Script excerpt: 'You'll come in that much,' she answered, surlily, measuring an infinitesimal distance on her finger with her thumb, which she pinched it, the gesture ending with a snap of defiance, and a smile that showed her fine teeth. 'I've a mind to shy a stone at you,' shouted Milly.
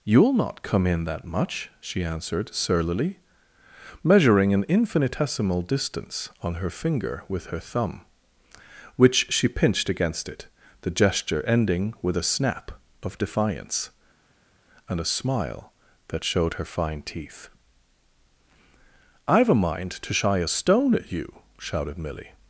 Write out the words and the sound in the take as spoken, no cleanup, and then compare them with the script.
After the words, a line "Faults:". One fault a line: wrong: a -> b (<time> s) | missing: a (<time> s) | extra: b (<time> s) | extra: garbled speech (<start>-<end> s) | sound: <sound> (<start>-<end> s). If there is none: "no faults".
'You'll not come in that much,' she answered, surlily, measuring an infinitesimal distance on her finger with her thumb, which she pinched against it, the gesture ending with a snap of defiance, and a smile that showed her fine teeth. 'I've a mind to shy a stone at you,' shouted Milly.
Faults:
extra: not (0.3 s)
extra: against (9.9 s)